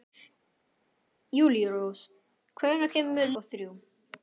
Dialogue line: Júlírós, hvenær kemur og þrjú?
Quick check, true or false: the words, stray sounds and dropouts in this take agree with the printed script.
true